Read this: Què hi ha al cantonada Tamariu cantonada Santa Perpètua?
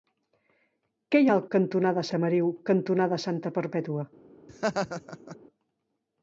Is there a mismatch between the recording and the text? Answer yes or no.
no